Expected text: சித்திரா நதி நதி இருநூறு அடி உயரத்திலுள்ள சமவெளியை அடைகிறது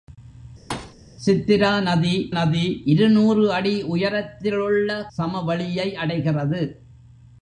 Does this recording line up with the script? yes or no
yes